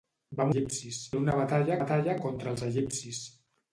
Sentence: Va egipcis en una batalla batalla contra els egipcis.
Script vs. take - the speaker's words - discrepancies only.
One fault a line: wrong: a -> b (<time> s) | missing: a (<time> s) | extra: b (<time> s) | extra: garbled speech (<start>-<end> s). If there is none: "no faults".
no faults